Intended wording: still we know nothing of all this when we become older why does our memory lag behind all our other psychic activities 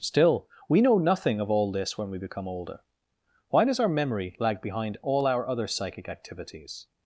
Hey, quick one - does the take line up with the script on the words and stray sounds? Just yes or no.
yes